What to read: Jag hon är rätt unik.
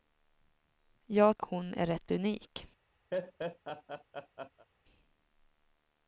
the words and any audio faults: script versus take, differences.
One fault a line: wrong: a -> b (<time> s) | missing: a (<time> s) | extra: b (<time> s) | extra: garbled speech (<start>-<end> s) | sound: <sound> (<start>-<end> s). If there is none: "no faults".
sound: laugh (3.1-4.7 s)